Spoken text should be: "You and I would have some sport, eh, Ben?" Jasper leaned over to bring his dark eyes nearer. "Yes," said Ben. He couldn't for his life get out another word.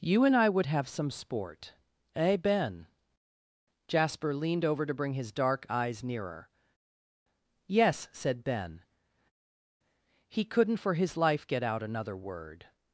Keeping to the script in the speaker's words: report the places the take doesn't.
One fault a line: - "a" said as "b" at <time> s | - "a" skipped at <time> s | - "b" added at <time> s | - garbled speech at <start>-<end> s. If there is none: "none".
none